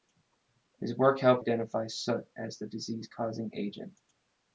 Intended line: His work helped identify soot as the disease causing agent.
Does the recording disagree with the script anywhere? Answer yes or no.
no